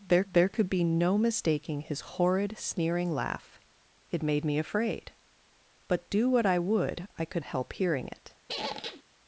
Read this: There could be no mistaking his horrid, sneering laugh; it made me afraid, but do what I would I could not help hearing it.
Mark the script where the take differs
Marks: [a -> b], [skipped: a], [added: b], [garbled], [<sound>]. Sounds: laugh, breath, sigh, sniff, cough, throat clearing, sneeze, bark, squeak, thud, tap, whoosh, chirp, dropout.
There [added: there] could be no mistaking his horrid, sneering laugh; it made me afraid, but do what I would I could [skipped: not] help hearing it. [squeak]